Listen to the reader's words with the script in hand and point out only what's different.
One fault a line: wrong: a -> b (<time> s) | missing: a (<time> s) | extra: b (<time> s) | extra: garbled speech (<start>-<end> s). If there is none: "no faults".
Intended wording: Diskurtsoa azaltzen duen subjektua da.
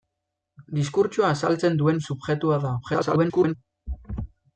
extra: garbled speech (2.8-3.6 s)